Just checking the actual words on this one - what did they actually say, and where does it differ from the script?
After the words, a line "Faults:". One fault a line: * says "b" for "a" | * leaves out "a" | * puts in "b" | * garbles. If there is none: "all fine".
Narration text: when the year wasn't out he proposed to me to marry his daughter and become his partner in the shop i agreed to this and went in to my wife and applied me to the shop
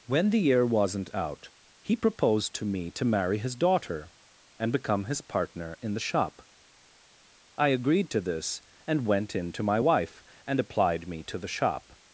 when the year wasn't out he proposed to me to marry his daughter and become his partner in the shop i agreed to this and went in to my wife and applied me to the shop
Faults:
all fine